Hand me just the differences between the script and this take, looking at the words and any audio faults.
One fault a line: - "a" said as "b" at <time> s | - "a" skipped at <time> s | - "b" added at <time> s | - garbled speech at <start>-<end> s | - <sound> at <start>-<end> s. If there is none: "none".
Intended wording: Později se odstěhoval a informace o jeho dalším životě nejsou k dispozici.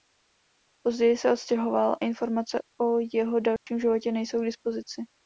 - "a" skipped at 2.0 s
- dropout at 3.6-3.7 s